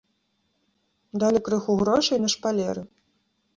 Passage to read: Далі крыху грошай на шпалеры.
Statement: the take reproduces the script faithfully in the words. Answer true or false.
true